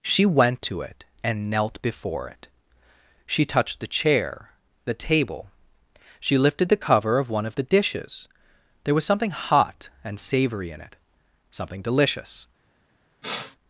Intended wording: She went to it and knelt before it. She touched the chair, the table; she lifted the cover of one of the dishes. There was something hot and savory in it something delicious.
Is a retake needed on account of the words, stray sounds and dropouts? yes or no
yes